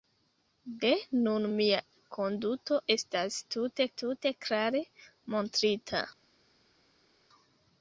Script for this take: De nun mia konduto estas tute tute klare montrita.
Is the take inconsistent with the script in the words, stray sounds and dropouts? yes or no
no